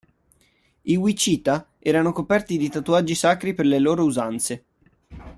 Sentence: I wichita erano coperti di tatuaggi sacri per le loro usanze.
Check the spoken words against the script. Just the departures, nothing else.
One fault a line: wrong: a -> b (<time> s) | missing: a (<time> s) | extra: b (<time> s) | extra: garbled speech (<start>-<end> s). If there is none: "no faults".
no faults